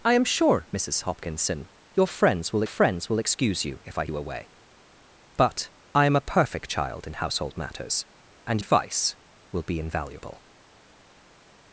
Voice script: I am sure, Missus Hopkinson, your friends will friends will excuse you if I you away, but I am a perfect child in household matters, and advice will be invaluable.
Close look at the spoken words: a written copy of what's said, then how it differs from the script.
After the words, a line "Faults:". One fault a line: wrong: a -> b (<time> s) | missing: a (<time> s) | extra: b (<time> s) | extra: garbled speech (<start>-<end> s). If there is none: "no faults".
I am sure, Missus Hopkinson, your friends will friends will excuse you if I you away, but I am a perfect child in household matters, and advice will be invaluable.
Faults:
no faults